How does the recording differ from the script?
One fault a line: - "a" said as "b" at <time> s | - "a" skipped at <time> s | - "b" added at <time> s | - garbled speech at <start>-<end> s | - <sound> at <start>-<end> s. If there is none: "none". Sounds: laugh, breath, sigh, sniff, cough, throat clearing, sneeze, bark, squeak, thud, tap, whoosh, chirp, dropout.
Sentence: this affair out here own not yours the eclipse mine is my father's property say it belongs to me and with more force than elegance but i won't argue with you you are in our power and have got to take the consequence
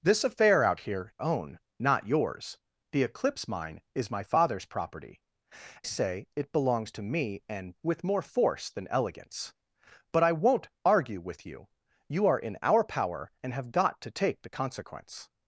none